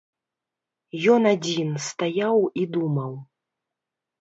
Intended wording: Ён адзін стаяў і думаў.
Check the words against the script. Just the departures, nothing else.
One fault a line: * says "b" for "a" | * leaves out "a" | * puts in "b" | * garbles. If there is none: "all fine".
all fine